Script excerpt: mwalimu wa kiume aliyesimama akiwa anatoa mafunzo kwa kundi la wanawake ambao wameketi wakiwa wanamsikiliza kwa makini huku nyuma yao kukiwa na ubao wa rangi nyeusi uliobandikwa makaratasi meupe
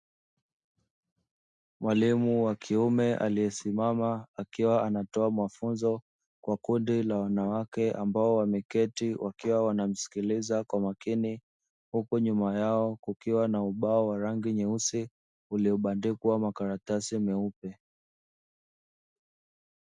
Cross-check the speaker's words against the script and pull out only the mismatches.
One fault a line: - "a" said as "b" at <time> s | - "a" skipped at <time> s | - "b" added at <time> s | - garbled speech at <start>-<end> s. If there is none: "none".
none